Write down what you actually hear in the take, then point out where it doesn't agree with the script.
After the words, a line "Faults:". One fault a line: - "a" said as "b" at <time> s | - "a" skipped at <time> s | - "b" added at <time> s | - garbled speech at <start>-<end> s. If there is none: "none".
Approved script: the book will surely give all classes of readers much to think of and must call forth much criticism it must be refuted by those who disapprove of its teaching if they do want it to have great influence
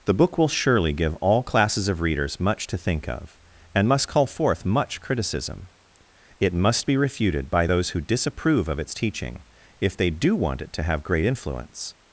the book will surely give all classes of readers much to think of and must call forth much criticism it must be refuted by those who disapprove of its teaching if they do want it to have great influence
Faults:
none